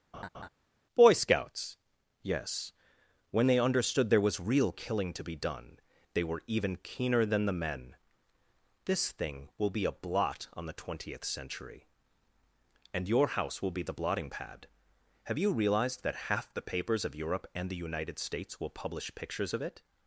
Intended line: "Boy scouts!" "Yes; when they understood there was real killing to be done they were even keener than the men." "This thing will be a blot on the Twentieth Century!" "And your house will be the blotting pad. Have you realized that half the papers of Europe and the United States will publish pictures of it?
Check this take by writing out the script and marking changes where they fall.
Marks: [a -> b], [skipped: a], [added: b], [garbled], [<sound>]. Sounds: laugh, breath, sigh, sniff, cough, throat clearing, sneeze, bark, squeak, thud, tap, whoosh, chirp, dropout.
[laugh] "Boy scouts!" "Yes; when they understood there was real killing to be done they were even keener than the men." "This thing will be a blot on the Twentieth Century!" "And your house will be the blotting pad. Have you realized that half the papers of Europe and the United States will publish pictures of it?